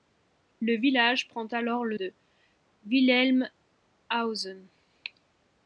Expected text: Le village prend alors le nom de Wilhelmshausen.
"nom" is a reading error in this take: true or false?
true